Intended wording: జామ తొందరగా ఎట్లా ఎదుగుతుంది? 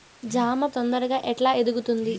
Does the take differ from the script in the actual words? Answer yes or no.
no